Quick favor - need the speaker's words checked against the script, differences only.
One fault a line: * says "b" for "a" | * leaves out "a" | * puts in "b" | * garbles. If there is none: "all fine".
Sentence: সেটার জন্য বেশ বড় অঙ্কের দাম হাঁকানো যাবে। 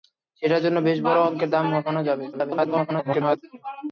* garbles